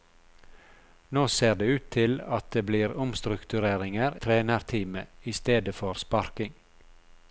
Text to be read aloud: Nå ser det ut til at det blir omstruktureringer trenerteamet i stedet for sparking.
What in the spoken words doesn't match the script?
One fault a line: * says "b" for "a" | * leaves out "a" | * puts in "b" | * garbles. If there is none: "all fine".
all fine